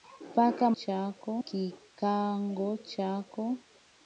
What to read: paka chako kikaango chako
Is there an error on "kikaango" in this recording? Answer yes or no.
no